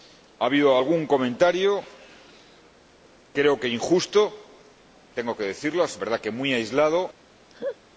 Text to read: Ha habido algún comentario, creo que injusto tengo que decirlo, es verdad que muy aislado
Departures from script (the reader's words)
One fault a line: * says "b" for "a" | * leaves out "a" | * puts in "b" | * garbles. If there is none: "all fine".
all fine